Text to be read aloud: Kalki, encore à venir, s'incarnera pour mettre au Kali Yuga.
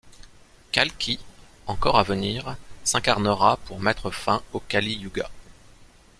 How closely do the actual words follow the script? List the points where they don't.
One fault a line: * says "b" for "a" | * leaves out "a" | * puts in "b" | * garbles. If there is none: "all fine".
* puts in "fin"